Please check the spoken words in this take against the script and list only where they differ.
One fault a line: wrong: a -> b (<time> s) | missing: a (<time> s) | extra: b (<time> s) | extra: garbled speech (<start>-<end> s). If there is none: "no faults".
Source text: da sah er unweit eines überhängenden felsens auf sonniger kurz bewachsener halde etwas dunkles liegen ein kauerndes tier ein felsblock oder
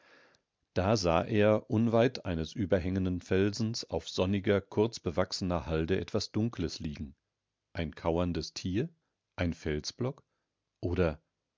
no faults